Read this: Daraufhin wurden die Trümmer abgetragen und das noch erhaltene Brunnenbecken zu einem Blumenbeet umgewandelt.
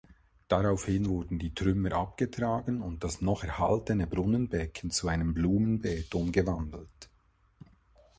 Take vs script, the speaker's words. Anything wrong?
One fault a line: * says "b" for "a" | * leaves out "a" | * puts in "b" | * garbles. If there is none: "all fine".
all fine